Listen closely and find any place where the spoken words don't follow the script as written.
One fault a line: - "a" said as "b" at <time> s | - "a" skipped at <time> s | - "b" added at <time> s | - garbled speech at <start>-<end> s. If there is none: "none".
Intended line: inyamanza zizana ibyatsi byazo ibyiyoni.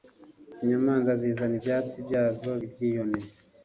none